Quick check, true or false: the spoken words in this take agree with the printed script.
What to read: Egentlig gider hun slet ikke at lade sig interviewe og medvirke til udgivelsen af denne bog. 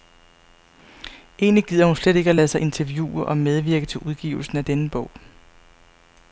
true